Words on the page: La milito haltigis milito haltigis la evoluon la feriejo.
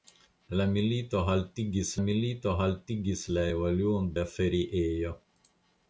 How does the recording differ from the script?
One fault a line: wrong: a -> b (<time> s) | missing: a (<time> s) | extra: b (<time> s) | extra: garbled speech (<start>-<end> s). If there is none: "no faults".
no faults